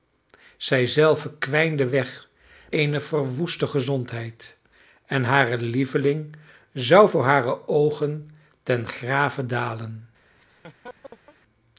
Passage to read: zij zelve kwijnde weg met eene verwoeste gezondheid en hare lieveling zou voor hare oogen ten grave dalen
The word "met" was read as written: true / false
false